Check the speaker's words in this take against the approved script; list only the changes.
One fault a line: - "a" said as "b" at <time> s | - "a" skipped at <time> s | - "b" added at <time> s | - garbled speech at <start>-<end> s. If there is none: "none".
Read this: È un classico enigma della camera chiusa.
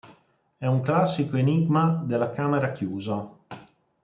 none